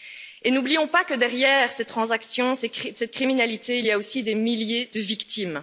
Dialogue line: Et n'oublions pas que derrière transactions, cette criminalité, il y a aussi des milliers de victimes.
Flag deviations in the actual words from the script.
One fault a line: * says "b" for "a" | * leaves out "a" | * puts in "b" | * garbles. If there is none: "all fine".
* puts in "ces"